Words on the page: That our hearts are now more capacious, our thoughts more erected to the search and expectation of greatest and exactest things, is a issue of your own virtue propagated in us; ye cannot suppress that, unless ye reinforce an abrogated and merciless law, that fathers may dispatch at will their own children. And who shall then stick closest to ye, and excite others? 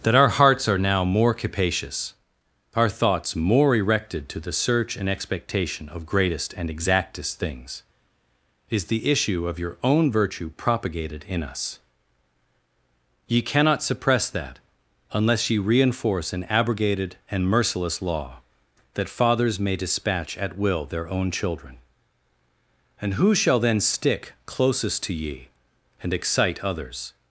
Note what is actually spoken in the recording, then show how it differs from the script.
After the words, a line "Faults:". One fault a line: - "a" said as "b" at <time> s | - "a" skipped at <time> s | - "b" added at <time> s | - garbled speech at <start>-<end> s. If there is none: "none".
That our hearts are now more capacious, our thoughts more erected to the search and expectation of greatest and exactest things, is the issue of your own virtue propagated in us; ye cannot suppress that, unless ye reinforce an abrogated and merciless law, that fathers may dispatch at will their own children. And who shall then stick closest to ye, and excite others?
Faults:
- "a" said as "the" at 8.8 s